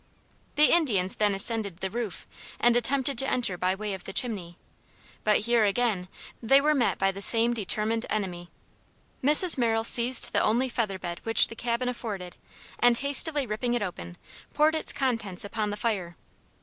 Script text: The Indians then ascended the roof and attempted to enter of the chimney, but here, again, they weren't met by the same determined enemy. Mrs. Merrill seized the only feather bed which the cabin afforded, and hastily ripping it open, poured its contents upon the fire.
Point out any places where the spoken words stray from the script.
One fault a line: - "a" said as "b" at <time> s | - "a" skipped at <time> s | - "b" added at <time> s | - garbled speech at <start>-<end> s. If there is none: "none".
- "by way" added at 3.5 s
- "weren't" said as "were" at 6.6 s